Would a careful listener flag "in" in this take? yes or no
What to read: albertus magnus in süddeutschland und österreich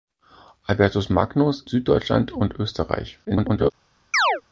yes